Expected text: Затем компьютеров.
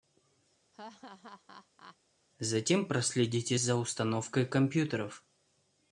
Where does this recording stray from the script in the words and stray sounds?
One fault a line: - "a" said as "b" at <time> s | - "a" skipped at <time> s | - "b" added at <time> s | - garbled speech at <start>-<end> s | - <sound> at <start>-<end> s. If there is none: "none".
- laugh at 0.7-2.0 s
- "проследите за установкой" added at 2.9 s